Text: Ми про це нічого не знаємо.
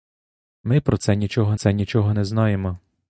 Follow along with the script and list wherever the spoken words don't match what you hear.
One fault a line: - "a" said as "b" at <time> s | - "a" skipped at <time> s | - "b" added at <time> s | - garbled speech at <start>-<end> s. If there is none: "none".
- "це нічого" added at 1.5 s